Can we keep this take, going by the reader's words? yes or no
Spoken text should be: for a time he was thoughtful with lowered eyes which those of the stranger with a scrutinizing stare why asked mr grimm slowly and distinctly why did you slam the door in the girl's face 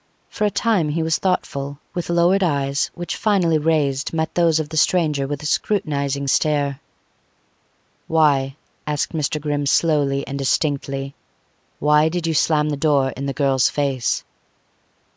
no